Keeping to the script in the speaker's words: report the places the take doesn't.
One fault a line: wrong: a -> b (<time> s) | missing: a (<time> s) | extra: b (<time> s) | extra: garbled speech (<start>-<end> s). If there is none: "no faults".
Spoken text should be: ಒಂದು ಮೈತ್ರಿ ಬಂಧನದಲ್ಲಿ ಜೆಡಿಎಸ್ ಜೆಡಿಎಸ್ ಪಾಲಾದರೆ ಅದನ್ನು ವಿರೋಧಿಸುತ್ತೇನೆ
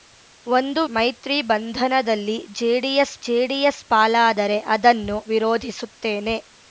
no faults